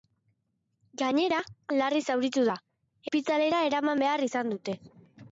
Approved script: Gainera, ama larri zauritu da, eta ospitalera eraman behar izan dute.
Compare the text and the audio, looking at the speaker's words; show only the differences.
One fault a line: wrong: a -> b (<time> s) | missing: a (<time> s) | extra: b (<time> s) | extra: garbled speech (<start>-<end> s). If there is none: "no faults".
missing: ama (1.4 s)
missing: eta (2.6 s)